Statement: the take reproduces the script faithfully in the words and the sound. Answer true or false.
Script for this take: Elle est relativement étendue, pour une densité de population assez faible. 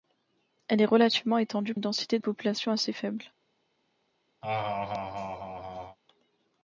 false